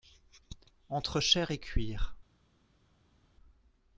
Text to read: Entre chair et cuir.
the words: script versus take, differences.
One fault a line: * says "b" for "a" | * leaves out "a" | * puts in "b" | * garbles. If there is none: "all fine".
all fine